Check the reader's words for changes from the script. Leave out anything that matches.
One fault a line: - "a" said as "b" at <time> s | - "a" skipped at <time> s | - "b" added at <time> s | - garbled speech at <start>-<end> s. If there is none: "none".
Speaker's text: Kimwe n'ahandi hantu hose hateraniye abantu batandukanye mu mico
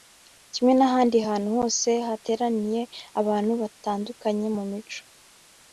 none